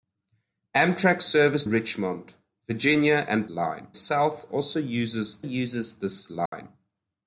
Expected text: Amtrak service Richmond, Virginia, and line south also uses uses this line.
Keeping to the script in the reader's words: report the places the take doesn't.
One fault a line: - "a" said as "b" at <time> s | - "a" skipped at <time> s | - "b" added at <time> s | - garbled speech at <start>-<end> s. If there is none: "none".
none